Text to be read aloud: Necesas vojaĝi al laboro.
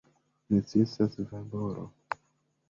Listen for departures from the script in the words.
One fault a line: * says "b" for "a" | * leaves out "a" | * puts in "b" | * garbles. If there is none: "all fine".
* leaves out "vojaĝi al"